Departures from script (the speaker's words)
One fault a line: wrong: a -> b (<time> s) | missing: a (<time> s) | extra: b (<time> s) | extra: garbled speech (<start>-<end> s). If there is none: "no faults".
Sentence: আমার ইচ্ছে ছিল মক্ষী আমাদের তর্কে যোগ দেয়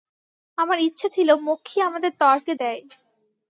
missing: যোগ (2.5 s)